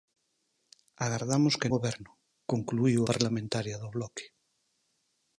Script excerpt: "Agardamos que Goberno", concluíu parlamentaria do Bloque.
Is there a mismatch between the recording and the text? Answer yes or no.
no